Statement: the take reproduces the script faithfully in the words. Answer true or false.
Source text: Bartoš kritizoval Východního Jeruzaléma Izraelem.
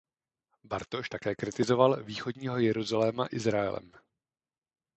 false